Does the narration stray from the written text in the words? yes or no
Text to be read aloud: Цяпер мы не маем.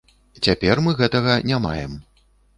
yes